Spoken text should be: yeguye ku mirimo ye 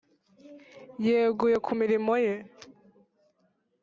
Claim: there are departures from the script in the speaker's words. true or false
false